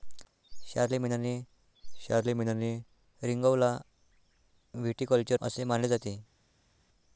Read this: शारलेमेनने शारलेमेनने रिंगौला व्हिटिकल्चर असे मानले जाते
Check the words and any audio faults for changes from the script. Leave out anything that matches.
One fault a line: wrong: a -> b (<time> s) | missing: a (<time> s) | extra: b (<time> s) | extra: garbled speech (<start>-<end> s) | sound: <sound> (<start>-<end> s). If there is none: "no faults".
no faults